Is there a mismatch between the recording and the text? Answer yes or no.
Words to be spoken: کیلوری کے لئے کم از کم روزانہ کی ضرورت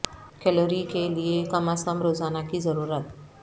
no